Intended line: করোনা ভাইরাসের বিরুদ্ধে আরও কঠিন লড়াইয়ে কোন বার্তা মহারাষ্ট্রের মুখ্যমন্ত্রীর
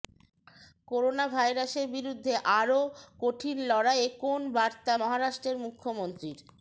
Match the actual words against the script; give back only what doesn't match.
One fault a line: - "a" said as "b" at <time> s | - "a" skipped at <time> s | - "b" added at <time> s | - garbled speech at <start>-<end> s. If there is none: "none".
none